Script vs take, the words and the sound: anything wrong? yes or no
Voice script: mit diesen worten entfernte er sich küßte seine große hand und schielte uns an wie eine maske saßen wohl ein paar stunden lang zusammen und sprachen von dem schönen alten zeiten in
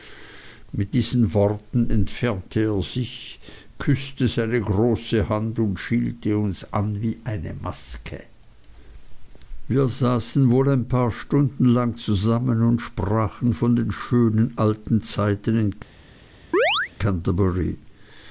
yes